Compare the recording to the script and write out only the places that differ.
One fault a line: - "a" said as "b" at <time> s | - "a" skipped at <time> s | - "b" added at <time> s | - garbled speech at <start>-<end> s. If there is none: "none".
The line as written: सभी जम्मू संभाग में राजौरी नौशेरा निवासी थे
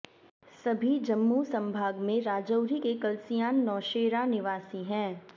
- "के कलसियान" added at 2.8 s
- "थे" said as "हैं" at 4.8 s